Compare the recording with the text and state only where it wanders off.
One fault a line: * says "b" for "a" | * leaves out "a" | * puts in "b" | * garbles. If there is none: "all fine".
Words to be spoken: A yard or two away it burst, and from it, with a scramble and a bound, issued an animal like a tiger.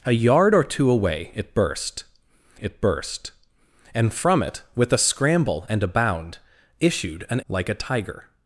* puts in "it burst"
* leaves out "animal"